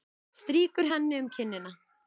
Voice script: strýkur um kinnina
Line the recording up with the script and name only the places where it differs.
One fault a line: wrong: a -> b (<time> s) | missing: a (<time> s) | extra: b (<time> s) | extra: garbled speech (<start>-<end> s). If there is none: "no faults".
extra: henni (0.9 s)